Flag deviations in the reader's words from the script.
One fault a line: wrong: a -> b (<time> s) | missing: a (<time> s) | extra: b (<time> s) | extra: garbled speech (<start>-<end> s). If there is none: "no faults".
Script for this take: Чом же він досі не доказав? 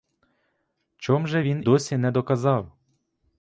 no faults